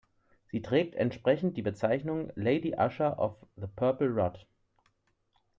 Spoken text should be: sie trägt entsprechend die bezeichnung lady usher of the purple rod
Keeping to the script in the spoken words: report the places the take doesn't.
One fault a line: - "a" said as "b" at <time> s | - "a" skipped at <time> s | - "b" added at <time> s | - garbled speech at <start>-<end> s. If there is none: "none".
none